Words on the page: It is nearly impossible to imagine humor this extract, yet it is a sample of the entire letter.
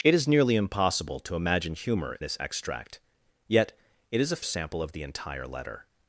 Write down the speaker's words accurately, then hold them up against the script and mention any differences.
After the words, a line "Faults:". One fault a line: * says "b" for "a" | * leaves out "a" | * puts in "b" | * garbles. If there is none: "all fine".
It is nearly impossible to imagine humor this extract, yet it is a sample of the entire letter.
Faults:
all fine